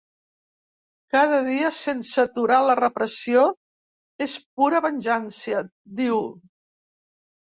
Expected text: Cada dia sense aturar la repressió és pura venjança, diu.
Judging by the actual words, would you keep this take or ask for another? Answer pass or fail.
pass